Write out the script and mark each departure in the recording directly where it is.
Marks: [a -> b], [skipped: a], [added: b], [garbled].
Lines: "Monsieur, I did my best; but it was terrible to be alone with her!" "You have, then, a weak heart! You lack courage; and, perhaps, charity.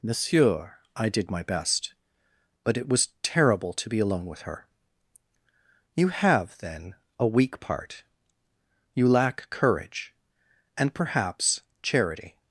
"Monsieur, I did my best; but it was terrible to be alone with her!" "You have, then, a weak [heart! -> part] You lack courage; and, perhaps, charity.